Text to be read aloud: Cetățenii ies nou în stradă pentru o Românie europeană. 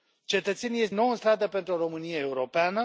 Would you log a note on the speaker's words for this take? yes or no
no